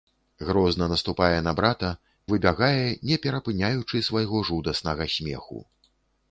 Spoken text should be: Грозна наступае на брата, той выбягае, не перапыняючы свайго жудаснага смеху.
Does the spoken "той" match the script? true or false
false